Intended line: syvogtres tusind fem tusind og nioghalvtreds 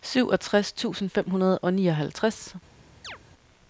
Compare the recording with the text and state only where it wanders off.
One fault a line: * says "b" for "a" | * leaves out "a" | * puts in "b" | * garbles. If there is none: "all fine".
* says "hundrede" for "tusind"